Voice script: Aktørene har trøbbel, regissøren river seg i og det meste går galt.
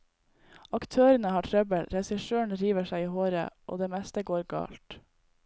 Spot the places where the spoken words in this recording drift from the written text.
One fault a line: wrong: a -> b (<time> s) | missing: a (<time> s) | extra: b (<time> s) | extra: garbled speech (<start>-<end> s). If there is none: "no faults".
extra: håret (3.2 s)